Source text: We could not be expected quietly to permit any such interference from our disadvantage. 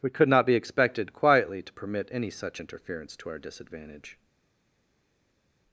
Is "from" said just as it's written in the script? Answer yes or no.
no